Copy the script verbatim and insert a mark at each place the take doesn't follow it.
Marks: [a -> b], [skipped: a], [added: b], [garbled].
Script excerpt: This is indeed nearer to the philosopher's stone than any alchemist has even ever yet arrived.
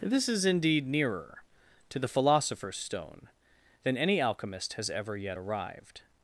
This is indeed nearer to the philosopher's stone than any alchemist has [skipped: even] ever yet arrived.